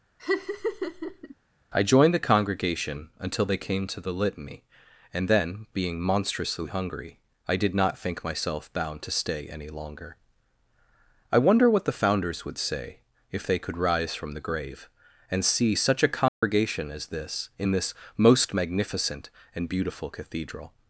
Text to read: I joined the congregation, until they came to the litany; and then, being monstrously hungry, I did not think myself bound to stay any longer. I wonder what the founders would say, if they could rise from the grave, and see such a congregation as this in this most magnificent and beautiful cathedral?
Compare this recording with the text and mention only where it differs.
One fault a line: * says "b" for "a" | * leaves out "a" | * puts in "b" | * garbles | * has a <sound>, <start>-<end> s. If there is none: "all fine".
* has a laugh, 0.2-1.3 s
* has a dropout, 16.3-16.4 s